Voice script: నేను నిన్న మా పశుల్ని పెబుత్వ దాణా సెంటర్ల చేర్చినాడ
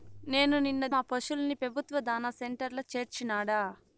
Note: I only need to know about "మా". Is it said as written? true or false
true